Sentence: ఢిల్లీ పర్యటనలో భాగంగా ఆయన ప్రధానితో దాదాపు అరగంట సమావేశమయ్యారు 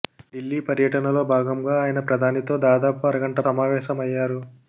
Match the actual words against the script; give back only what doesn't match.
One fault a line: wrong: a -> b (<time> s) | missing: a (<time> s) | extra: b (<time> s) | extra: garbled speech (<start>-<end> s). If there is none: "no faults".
no faults